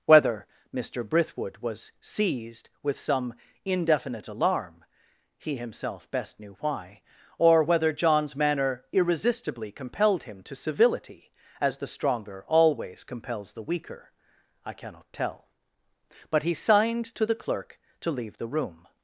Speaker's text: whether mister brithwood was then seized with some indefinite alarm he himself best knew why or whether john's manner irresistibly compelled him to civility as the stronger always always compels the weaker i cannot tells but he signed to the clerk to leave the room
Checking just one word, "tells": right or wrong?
wrong